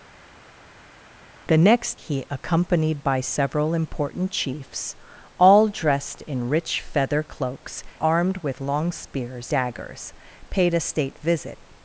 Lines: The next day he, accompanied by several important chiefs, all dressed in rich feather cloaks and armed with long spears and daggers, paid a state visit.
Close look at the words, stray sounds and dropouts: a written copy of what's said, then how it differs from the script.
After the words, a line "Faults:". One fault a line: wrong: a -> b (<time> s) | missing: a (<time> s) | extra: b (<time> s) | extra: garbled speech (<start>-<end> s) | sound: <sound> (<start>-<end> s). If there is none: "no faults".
The next he, accompanied by several important chiefs, all dressed in rich feather cloaks armed with long spears daggers, paid a state visit.
Faults:
missing: day (2.0 s)
missing: and (7.8 s)
missing: and (9.5 s)